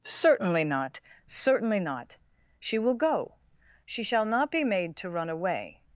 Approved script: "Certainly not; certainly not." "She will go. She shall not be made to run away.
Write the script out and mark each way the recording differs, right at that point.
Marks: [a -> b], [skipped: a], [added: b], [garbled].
"Certainly not; certainly not." "She will go. She shall not be made to run away.